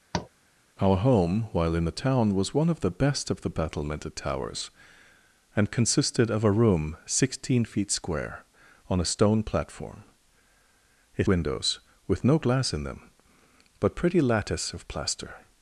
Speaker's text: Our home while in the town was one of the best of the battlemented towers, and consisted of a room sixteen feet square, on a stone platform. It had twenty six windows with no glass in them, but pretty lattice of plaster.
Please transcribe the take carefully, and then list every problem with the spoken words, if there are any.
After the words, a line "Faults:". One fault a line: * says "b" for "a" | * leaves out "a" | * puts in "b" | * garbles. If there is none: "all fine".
Our home while in the town was one of the best of the battlemented towers, and consisted of a room sixteen feet square, on a stone platform. It windows with no glass in them, but pretty lattice of plaster.
Faults:
* leaves out "had twenty six"